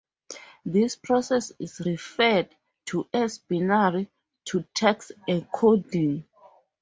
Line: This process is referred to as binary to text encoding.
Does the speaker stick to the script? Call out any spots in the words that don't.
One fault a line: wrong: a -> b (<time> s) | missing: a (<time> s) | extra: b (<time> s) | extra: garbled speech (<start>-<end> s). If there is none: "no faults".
no faults